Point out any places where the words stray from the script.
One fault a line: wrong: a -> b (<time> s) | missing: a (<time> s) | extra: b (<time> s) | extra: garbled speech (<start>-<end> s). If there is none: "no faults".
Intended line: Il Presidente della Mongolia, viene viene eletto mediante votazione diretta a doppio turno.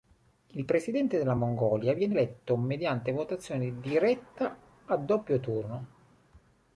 missing: viene (2.1 s)